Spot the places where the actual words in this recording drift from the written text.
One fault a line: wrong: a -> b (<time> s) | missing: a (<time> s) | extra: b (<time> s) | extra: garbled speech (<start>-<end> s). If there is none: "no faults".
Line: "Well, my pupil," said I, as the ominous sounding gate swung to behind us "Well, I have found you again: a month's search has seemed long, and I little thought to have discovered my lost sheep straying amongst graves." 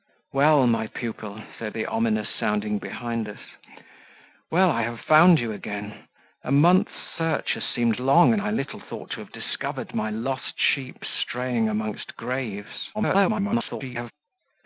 missing: I as (1.8 s)
missing: gate swung to (2.8 s)
extra: garbled speech (12.9-14.1 s)